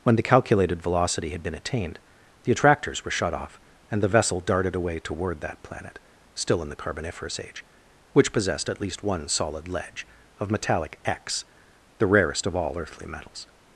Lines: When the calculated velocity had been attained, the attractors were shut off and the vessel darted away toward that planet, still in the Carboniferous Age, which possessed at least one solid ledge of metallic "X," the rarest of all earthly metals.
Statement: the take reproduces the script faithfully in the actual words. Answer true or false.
true